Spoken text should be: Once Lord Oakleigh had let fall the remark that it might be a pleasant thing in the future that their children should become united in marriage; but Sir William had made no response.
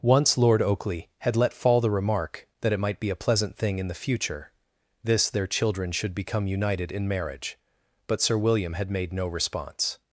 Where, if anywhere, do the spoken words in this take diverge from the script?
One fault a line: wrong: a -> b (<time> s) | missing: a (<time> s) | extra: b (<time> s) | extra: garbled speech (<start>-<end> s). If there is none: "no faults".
wrong: that -> this (5.0 s)